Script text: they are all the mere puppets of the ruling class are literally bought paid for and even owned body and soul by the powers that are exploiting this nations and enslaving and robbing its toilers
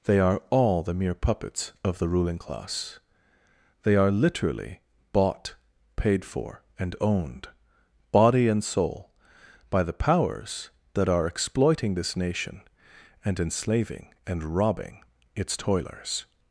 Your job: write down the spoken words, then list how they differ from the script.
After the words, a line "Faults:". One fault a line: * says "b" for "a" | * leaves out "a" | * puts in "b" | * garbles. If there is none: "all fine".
they are all the mere puppets of the ruling class they are literally bought paid for and owned body and soul by the powers that are exploiting this nation and enslaving and robbing its toilers
Faults:
* puts in "they"
* leaves out "even"
* says "nation" for "nations"